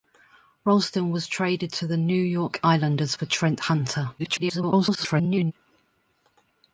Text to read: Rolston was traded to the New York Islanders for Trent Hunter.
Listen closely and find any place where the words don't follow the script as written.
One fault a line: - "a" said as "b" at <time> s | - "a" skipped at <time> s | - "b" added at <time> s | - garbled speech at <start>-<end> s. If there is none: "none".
- garbled speech at 4.2-5.5 s